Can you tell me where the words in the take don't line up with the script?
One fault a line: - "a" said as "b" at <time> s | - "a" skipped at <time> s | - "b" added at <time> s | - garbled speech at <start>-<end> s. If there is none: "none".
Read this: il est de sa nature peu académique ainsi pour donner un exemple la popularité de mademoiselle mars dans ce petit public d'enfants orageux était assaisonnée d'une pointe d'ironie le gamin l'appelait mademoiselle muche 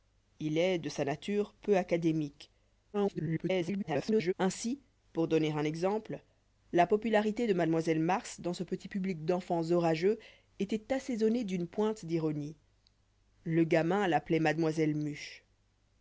- garbled speech at 2.9-4.3 s